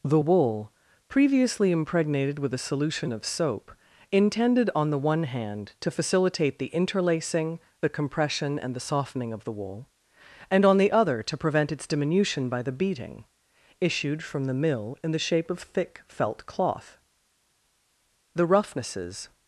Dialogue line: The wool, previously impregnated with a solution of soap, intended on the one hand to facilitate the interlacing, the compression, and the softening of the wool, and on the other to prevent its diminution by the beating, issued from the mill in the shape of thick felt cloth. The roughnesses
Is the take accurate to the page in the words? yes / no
yes